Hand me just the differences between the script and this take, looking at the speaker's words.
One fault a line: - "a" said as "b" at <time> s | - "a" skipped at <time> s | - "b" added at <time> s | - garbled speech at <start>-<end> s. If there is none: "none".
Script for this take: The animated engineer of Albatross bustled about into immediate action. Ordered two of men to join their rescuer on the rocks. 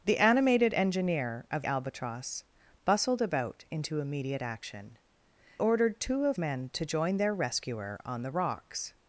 none